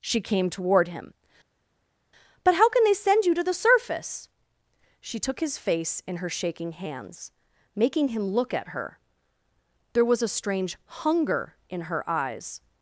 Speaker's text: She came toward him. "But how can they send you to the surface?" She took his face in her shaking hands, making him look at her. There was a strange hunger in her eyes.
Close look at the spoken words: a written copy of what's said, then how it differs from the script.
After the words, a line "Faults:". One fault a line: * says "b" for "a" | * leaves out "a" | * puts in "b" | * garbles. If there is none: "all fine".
She came toward him. "But how can they send you to the surface?" She took his face in her shaking hands, making him look at her. There was a strange hunger in her eyes.
Faults:
all fine